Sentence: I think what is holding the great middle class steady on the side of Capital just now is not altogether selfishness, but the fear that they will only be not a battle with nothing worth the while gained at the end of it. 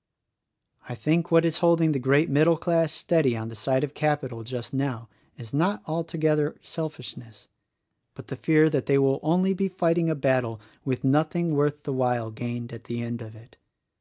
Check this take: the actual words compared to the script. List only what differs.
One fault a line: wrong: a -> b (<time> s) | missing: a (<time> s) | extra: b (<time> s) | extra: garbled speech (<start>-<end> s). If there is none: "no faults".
wrong: not -> fighting (9.7 s)